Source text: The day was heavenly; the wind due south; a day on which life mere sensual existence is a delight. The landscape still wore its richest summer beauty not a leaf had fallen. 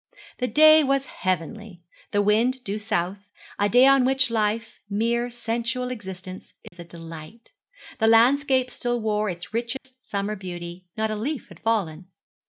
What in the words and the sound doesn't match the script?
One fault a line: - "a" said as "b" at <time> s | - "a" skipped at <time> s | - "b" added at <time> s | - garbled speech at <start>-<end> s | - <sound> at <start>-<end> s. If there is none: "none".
- dropout at 6.7-6.7 s
- dropout at 9.8-9.8 s